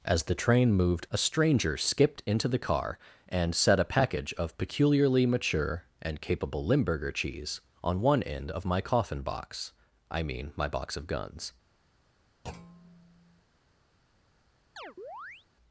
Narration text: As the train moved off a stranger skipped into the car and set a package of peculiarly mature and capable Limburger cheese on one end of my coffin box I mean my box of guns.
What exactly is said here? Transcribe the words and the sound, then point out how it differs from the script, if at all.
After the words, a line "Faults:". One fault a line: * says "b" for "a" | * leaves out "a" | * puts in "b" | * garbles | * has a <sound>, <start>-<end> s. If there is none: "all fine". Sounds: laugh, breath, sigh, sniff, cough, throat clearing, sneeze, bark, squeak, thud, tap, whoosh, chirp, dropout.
As the train moved a stranger skipped into the car and set a package of peculiarly mature and capable Limburger cheese on one end of my coffin box I mean my box of guns.
Faults:
* leaves out "off"
* has a thud, 12.4-13.4 s
* has a chirp, 14.8-15.5 s